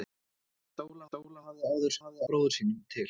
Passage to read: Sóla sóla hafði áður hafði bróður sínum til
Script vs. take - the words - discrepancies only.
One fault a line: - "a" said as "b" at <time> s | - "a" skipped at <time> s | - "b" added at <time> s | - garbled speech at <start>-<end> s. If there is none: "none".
none